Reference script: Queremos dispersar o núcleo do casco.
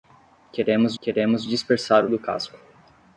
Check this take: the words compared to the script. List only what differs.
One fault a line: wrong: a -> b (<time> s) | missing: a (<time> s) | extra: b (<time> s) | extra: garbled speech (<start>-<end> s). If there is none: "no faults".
extra: queremos (1.0 s)
missing: núcleo (2.1 s)